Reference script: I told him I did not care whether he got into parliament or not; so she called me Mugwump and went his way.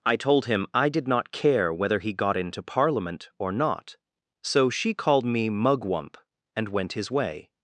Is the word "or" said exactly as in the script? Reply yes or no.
yes